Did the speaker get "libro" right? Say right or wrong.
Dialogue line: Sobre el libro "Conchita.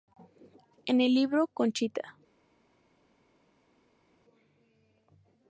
right